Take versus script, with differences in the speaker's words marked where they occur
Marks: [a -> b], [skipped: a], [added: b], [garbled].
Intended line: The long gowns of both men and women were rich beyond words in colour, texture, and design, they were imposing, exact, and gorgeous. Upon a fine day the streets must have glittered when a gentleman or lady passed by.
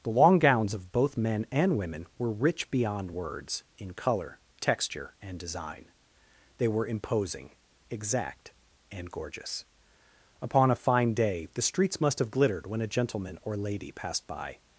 The long gowns of both men and women were rich beyond words in colour, texture, and design, they were imposing, exact, and gorgeous. Upon a fine day the streets must have glittered when a gentleman or lady passed by.